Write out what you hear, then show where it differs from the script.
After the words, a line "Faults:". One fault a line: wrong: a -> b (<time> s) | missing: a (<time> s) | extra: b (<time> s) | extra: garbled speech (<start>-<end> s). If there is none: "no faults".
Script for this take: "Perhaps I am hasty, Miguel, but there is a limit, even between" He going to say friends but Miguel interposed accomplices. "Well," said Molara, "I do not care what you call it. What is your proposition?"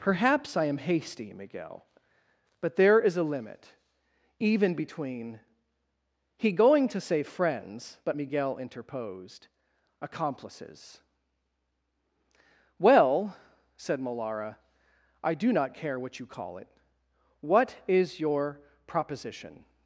"Perhaps I am hasty, Miguel, but there is a limit, even between" He going to say friends but Miguel interposed accomplices. "Well," said Molara, "I do not care what you call it. What is your proposition?"
Faults:
no faults